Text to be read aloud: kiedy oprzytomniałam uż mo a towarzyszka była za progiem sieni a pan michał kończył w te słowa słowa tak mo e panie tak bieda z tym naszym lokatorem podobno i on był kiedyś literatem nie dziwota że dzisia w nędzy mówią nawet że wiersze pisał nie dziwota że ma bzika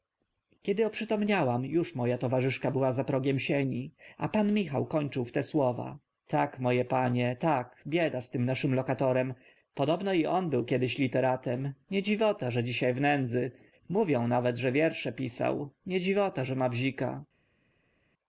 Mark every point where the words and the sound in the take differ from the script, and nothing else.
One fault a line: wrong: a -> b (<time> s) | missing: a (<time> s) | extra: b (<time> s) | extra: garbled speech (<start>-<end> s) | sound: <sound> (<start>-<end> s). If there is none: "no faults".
missing: słowa (6.0 s)